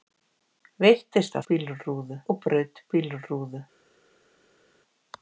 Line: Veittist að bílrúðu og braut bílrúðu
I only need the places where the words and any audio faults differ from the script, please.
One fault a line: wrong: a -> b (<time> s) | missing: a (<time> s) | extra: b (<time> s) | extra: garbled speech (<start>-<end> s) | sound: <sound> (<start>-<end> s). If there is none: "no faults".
no faults